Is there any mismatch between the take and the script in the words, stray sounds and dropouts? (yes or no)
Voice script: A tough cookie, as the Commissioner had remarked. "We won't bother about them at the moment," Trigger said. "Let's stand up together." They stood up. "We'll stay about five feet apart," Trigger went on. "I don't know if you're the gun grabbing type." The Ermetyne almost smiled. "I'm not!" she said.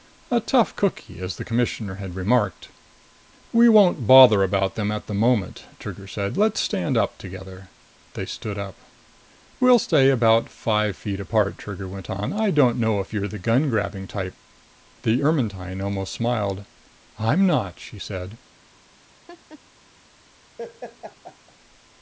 yes